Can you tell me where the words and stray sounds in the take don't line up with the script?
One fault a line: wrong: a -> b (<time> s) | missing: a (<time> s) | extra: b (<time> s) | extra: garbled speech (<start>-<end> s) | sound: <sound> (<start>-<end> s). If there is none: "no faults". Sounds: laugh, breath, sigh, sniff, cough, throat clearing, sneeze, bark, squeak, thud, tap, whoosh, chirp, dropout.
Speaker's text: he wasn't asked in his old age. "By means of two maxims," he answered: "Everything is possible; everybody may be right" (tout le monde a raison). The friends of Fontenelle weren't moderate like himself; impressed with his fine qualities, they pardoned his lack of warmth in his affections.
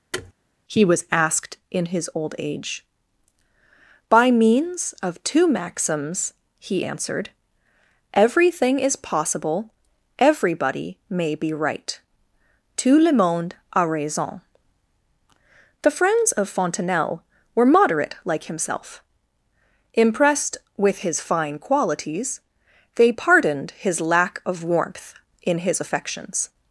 sound: thud (0.1-0.3 s)
wrong: wasn't -> was (0.8 s)
wrong: weren't -> were (17.5 s)